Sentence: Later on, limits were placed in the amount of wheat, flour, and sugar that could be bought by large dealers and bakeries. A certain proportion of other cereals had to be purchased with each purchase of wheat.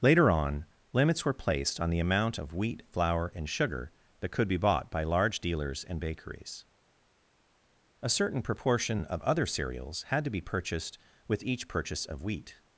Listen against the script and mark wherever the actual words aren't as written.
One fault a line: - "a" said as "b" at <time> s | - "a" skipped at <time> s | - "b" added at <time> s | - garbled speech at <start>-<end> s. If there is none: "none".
- "in" said as "on" at 1.8 s